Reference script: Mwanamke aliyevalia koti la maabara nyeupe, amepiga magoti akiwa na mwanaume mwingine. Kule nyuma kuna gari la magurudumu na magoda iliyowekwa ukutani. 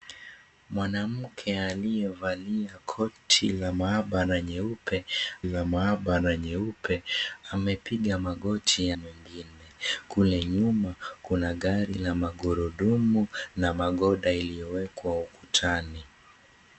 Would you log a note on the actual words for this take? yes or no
yes